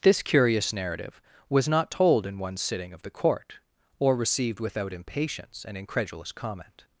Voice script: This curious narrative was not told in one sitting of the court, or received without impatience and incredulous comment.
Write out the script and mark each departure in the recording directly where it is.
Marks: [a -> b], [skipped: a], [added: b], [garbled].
This curious narrative was not told in one sitting of the court, or received without impatience and incredulous comment.